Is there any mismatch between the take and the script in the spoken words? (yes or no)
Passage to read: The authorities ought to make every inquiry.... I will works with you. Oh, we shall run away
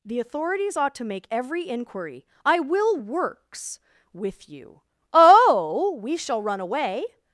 no